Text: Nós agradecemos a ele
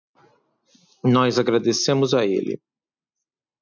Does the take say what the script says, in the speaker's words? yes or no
yes